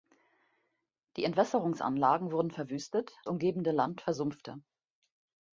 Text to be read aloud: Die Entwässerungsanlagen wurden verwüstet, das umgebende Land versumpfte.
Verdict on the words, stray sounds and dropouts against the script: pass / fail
fail